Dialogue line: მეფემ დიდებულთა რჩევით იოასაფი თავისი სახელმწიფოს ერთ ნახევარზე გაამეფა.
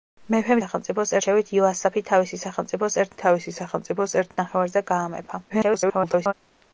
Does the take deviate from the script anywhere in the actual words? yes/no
yes